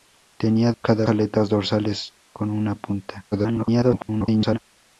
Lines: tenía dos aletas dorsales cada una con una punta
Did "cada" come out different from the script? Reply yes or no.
yes